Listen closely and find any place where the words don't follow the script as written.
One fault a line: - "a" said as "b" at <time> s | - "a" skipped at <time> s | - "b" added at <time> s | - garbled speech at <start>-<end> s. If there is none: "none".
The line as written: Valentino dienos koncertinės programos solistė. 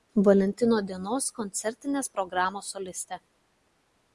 none